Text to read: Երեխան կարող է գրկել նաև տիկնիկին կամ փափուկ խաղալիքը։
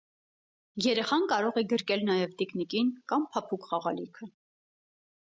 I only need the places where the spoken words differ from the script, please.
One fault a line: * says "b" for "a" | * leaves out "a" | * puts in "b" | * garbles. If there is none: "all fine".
all fine